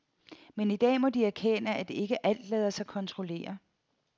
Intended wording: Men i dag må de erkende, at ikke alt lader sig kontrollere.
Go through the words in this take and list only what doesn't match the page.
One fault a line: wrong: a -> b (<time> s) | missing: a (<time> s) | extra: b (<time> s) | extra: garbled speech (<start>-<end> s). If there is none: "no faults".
no faults